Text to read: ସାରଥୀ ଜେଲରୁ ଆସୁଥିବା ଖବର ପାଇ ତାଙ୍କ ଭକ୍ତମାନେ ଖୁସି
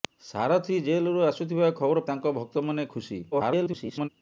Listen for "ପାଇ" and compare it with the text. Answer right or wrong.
wrong